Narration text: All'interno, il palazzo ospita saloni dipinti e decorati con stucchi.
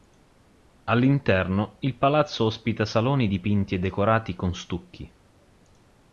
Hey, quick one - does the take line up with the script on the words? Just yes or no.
yes